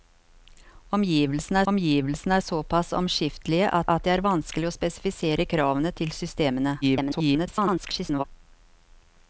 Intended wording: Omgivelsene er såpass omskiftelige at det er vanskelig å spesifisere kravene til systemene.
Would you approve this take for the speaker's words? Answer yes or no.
no